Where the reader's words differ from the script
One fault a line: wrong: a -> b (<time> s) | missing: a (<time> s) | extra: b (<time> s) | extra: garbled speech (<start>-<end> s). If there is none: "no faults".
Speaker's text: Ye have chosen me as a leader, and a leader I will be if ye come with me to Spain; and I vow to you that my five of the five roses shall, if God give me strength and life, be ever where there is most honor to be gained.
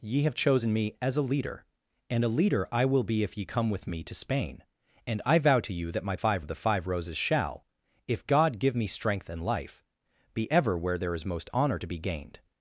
no faults